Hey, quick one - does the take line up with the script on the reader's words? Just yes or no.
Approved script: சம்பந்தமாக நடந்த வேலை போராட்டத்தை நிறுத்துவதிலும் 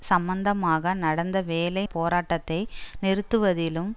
yes